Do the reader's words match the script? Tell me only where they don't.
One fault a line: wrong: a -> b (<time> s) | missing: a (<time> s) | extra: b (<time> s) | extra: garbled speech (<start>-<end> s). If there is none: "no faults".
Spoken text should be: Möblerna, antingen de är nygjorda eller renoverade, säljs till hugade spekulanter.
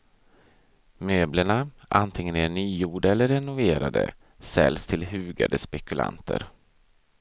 no faults